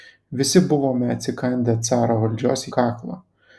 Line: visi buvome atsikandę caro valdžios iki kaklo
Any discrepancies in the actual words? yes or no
yes